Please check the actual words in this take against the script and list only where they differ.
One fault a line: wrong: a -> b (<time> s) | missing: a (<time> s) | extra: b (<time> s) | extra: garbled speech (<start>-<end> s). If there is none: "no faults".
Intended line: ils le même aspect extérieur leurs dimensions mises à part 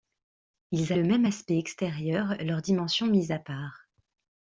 no faults